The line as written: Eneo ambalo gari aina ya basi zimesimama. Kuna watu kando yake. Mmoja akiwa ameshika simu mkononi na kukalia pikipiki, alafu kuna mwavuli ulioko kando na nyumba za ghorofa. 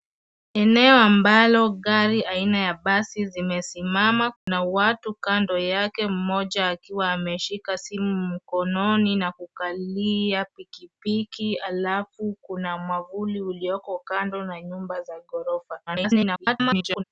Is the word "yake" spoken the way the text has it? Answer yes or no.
yes